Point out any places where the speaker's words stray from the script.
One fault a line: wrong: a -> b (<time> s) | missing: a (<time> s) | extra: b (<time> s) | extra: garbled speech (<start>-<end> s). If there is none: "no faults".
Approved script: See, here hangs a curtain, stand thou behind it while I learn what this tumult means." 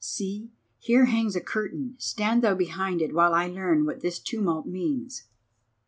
no faults